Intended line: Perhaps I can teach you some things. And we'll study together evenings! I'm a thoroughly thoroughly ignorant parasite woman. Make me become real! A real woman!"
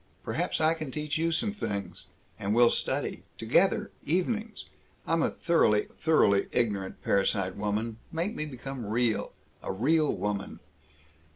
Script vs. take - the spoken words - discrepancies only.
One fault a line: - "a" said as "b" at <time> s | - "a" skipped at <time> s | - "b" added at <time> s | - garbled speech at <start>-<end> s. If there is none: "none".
none